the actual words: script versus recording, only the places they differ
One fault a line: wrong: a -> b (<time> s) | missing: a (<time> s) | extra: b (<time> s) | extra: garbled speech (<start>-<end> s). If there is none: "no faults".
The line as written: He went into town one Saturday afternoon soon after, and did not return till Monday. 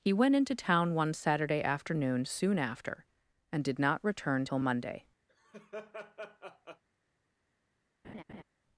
no faults